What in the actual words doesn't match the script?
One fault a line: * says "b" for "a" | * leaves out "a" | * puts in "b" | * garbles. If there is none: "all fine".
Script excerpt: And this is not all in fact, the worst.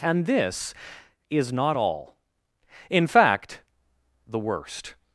all fine